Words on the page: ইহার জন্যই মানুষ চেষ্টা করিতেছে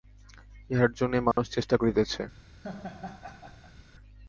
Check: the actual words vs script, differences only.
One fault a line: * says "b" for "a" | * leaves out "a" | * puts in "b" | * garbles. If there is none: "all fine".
all fine